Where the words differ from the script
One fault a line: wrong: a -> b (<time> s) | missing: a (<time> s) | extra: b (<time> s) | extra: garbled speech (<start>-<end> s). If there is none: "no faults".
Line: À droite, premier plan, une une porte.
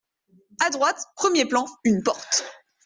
missing: une (2.1 s)